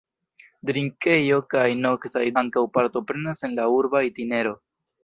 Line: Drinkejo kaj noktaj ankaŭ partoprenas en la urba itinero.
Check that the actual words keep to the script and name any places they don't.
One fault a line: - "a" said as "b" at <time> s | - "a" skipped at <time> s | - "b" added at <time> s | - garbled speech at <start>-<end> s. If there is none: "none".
none